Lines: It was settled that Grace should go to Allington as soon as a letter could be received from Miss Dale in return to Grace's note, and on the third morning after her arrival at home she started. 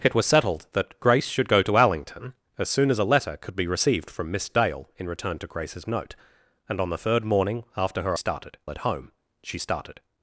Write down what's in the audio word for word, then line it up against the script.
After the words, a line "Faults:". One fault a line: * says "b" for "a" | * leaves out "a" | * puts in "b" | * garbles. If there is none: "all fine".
It was settled that Grace should go to Allington as soon as a letter could be received from Miss Dale in return to Grace's note, and on the third morning after her started at home she started.
Faults:
* says "started" for "arrival"